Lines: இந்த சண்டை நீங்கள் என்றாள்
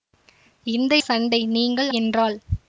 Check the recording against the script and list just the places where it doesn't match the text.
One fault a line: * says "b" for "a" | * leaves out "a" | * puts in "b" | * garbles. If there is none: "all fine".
all fine